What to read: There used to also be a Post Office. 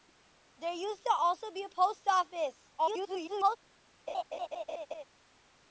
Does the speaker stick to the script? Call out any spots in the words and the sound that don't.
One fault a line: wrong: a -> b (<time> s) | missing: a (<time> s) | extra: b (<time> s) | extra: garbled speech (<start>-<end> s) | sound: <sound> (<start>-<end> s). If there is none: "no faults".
extra: garbled speech (2.8-3.6 s)
sound: laugh (4.1-5.0 s)